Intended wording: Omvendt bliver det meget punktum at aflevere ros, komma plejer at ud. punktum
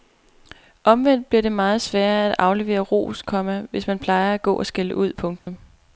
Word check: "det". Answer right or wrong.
right